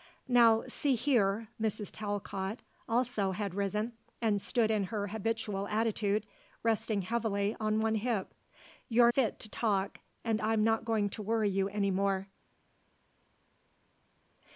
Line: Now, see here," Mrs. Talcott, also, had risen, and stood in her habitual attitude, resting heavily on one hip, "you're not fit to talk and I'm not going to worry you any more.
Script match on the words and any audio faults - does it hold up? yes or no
no